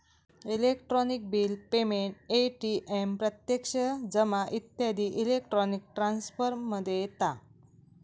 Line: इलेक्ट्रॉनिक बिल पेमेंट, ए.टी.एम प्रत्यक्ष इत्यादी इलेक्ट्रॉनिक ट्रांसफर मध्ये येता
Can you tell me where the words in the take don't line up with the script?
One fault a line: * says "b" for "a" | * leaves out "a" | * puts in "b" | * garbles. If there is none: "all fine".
* puts in "जमा"